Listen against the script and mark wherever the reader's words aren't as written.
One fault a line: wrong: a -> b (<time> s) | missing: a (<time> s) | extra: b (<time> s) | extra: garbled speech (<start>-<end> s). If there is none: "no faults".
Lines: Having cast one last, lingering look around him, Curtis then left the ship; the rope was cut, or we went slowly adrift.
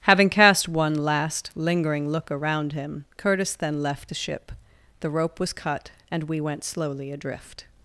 wrong: or -> and (6.1 s)